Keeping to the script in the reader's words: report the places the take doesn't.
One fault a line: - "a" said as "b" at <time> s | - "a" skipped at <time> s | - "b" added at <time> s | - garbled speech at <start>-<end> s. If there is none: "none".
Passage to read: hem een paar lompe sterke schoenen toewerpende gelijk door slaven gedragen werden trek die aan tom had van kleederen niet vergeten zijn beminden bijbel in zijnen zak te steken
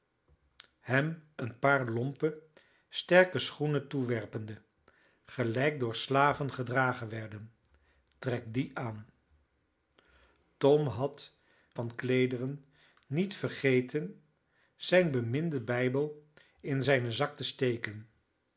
none